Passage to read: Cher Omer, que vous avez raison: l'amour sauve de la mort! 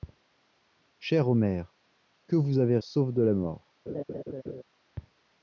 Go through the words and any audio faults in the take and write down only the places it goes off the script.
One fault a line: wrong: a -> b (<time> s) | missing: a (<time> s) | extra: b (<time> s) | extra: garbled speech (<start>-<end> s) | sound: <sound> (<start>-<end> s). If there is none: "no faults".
missing: raison l'amour (2.8 s)
sound: laugh (3.9-4.6 s)